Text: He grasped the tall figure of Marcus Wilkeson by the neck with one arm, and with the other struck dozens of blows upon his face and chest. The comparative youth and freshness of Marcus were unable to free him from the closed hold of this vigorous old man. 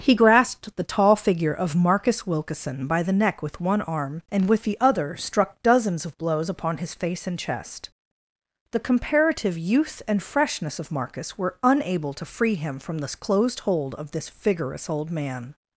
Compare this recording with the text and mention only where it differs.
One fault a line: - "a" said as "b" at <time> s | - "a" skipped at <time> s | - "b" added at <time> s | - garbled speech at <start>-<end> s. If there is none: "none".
none